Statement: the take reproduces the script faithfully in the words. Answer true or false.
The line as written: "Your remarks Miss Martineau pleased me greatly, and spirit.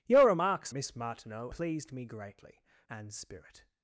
true